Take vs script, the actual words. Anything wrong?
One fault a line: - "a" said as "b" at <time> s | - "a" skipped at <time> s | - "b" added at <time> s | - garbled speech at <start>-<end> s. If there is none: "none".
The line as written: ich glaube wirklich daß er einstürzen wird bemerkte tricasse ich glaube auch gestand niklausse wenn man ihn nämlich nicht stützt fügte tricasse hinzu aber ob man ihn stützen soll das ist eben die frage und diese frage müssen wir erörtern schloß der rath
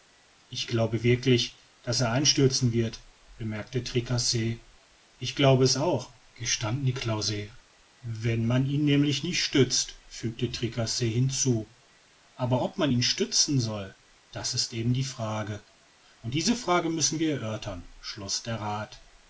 - "es" added at 5.6 s